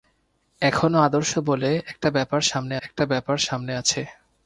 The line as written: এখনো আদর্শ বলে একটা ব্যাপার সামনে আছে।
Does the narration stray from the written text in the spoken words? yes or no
yes